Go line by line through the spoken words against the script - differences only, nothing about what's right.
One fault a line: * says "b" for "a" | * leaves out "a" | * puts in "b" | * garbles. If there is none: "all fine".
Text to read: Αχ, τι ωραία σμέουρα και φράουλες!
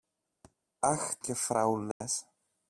* leaves out "τι ωραία σμέουρα"